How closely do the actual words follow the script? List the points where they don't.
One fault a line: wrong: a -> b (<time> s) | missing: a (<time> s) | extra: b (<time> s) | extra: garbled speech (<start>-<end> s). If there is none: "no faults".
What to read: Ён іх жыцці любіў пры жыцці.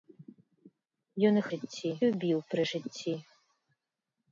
no faults